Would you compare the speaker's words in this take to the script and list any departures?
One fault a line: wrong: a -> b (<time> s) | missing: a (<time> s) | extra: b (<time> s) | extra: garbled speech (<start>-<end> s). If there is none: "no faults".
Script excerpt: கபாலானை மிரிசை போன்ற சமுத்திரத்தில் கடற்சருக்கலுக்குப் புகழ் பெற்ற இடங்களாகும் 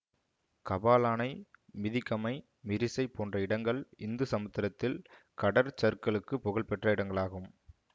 extra: மிதிகமை (1.8 s)
extra: இடங்கள் இந்து (3.4 s)